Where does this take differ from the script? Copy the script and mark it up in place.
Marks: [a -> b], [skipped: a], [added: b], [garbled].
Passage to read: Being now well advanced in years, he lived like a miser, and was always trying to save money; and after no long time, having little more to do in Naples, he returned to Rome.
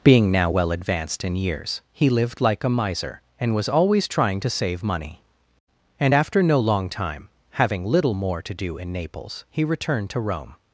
Being now well advanced in years, he lived like a miser, and was always trying to save money; and after no long time, having little more to do in Naples, he returned to Rome.